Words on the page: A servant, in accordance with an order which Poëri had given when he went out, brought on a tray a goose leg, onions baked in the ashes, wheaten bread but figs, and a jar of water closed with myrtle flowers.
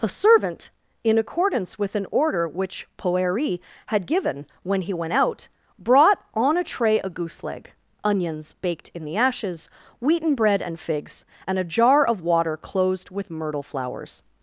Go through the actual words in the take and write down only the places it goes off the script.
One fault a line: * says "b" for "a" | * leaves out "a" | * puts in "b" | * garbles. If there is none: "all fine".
* says "and" for "but"